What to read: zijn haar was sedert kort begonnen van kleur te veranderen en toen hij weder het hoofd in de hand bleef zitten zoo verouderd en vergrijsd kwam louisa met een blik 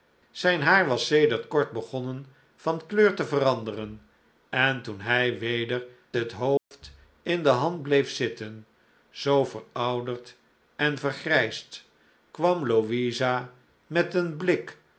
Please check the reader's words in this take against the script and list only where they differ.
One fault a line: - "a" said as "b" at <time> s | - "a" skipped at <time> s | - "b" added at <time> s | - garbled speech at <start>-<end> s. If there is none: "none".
none